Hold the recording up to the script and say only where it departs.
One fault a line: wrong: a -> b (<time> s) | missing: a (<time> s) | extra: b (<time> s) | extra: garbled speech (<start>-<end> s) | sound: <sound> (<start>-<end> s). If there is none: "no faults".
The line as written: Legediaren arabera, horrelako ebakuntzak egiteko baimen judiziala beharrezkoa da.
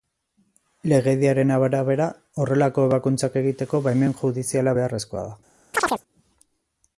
sound: chirp (5.7-6.0 s)